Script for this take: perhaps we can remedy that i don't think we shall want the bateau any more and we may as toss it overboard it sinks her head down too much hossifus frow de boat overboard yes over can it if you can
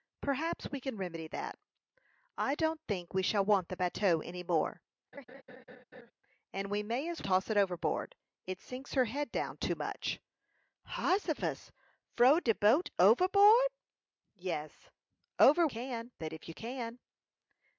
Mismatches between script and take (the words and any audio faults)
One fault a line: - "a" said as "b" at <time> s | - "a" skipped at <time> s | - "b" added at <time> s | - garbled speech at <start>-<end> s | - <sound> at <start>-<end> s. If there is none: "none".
- laugh at 5.1-6.1 s